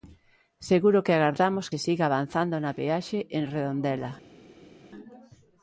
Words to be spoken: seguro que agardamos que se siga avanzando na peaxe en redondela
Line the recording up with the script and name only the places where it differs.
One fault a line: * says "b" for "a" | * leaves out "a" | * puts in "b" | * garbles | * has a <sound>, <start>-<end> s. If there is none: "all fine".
* leaves out "que"